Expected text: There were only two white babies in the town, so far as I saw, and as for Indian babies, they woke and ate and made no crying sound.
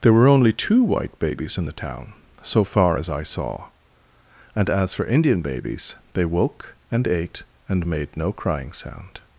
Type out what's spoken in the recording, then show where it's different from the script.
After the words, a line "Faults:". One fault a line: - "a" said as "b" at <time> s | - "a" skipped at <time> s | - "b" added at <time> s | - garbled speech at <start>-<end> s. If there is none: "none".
There were only two white babies in the town, so far as I saw, and as for Indian babies, they woke and ate and made no crying sound.
Faults:
none